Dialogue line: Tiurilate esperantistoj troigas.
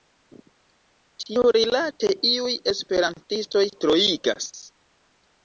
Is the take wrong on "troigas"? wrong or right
right